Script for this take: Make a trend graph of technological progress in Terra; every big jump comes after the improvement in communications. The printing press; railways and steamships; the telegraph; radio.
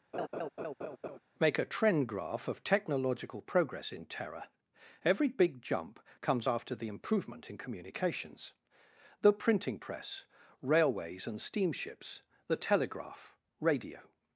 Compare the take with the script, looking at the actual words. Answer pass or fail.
pass